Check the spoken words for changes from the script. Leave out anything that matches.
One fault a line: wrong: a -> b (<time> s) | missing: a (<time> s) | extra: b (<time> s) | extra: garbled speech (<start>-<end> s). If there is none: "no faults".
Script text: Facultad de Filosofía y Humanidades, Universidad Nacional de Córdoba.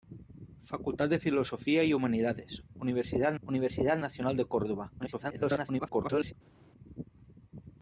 extra: Universidad (3.4 s)
extra: garbled speech (5.0-6.3 s)